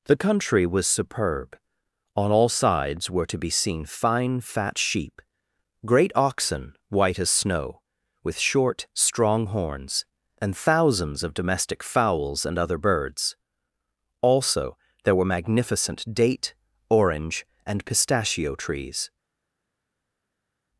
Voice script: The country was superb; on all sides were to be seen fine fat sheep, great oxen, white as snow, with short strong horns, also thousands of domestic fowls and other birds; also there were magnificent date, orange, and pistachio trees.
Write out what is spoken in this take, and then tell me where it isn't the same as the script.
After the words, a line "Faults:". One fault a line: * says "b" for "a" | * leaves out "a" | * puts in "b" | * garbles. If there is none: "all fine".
The country was superb; on all sides were to be seen fine fat sheep, great oxen, white as snow, with short strong horns, and thousands of domestic fowls and other birds; also there were magnificent date, orange, and pistachio trees.
Faults:
* says "and" for "also"